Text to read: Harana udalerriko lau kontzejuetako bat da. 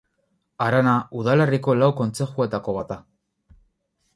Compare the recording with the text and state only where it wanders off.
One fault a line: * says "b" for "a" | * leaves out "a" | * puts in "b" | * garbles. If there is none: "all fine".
all fine